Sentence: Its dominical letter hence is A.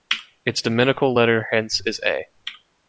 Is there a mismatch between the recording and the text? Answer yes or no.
no